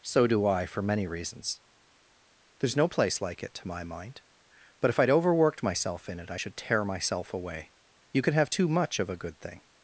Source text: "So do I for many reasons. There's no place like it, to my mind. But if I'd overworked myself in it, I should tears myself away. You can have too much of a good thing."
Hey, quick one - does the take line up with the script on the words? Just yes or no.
no